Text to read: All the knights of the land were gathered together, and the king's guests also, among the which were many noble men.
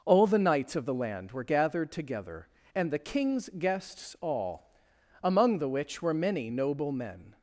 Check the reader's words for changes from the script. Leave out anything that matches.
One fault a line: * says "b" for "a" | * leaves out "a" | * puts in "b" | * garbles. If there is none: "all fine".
* says "all" for "also"